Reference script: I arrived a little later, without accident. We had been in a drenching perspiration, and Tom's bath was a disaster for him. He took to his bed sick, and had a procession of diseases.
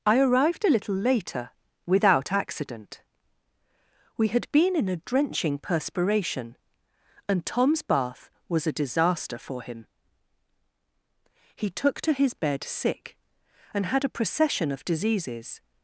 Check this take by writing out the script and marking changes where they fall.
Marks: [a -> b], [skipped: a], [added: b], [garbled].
I arrived a little later, without accident. We had been in a drenching perspiration, and Tom's bath was a disaster for him. He took to his bed sick, and had a procession of diseases.